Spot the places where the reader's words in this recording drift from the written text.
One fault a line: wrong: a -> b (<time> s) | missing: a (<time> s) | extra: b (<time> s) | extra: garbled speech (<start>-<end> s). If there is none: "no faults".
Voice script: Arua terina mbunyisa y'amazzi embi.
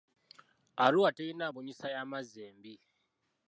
no faults